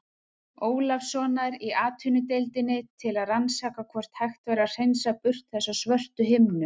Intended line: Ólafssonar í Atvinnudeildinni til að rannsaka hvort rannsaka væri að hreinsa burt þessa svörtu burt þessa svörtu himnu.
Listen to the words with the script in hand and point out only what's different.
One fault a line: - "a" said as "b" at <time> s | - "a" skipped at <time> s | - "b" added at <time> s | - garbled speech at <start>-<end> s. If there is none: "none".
- "rannsaka" said as "hægt" at 4.2 s
- "burt þessa svörtu" skipped at 6.3 s